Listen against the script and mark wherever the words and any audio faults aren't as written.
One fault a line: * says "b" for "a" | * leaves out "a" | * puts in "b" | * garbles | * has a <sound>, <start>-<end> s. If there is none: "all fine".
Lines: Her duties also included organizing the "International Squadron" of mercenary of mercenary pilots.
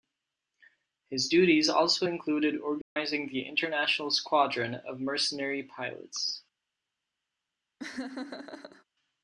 * says "His" for "Her"
* has a dropout, 2.8-3.0 s
* leaves out "of mercenary"
* has a laugh, 7.8-8.8 s